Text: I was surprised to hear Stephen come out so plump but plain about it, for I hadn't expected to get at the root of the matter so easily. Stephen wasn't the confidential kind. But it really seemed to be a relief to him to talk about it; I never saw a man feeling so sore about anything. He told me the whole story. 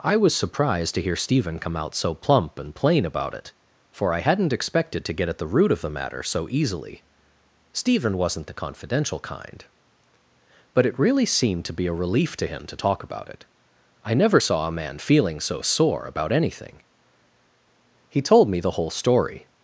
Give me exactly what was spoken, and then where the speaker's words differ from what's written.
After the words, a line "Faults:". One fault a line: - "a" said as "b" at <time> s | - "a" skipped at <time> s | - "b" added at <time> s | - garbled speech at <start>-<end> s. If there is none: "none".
I was surprised to hear Stephen come out so plump and plain about it, for I hadn't expected to get at the root of the matter so easily. Stephen wasn't the confidential kind. But it really seemed to be a relief to him to talk about it; I never saw a man feeling so sore about anything. He told me the whole story.
Faults:
- "but" said as "and" at 2.6 s